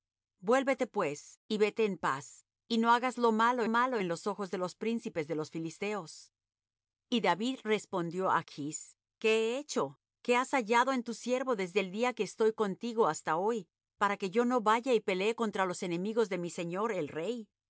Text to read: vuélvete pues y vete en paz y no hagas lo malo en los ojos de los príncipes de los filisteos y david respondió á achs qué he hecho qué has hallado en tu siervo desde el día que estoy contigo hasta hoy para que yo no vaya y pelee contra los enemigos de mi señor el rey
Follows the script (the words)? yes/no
no